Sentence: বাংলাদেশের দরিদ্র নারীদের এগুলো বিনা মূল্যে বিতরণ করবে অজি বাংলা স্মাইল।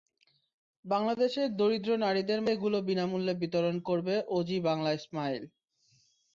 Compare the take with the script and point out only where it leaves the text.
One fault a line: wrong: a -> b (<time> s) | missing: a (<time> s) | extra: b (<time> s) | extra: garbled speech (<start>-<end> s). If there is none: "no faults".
no faults